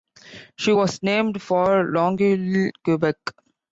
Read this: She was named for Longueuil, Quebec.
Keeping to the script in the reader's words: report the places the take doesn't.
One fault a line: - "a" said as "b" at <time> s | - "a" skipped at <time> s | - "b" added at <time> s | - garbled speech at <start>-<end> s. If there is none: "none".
none